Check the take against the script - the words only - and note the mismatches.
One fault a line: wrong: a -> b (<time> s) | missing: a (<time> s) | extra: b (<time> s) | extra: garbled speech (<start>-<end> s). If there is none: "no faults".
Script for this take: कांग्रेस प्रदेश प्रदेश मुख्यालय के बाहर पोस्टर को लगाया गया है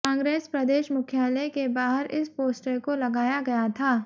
missing: प्रदेश (0.9 s)
extra: इस (2.1 s)
wrong: है -> था (3.7 s)